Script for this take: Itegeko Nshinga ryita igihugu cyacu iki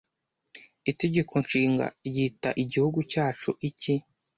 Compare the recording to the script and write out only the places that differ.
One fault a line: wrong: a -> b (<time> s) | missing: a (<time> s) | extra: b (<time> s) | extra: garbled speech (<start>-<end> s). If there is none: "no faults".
no faults